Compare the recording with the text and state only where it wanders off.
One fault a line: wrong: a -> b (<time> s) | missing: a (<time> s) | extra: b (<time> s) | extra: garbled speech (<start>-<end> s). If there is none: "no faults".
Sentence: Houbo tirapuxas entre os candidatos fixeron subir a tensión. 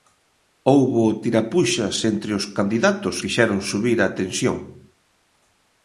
no faults